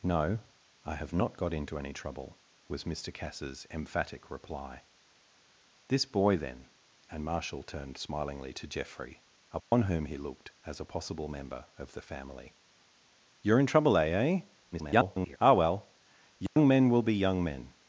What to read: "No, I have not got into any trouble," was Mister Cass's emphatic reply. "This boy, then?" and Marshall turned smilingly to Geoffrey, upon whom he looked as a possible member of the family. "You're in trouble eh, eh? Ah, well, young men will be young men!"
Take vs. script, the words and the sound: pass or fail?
fail